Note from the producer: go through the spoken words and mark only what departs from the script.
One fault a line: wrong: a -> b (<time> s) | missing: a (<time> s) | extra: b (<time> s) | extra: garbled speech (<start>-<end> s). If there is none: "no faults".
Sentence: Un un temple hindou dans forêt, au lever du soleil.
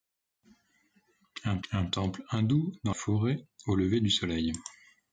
no faults